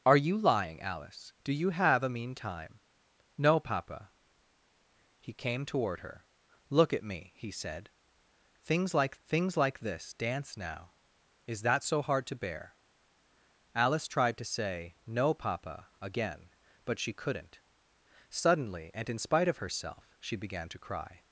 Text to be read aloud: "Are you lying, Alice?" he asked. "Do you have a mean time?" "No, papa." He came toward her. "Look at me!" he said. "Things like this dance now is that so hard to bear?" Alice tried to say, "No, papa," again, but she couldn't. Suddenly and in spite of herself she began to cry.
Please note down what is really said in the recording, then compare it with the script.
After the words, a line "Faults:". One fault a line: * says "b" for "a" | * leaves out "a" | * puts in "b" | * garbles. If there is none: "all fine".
"Are you lying, Alice. "Do you have a mean time?" "No, papa." He came toward her. "Look at me!" he said. "Things like things like this dance now is that so hard to bear?" Alice tried to say, "No, papa," again, but she couldn't. Suddenly and in spite of herself she began to cry.
Faults:
* leaves out "he asked"
* puts in "things like"